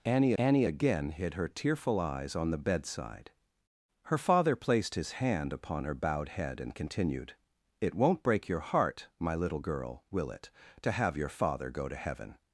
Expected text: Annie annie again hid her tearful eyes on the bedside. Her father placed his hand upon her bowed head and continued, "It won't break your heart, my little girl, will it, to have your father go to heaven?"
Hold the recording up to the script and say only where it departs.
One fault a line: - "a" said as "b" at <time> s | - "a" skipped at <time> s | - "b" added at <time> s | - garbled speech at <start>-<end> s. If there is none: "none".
none